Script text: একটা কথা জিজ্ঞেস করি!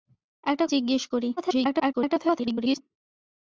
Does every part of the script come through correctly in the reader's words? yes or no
no